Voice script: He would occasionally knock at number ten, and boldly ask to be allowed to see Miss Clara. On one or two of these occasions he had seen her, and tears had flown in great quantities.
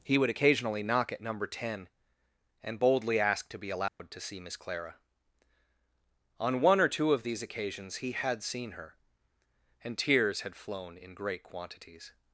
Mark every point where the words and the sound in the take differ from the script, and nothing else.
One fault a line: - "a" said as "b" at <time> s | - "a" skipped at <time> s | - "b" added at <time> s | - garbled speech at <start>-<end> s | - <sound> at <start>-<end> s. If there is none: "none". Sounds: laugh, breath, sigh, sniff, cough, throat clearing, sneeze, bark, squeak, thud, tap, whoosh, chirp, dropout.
- dropout at 3.9-4.0 s